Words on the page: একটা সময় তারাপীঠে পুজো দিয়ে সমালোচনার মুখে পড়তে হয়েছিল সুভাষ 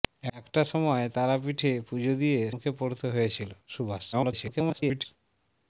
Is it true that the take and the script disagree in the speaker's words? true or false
true